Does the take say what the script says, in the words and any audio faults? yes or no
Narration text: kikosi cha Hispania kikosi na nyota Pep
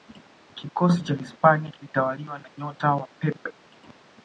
no